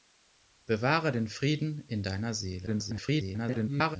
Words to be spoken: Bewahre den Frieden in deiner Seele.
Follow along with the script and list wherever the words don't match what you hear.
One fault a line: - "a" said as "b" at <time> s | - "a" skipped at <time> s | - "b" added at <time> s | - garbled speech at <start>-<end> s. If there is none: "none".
- garbled speech at 2.7-4.0 s